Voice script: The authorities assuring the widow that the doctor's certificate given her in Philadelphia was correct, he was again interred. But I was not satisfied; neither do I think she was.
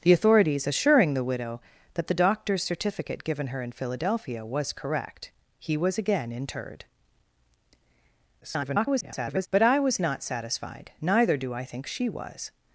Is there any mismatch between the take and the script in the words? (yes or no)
yes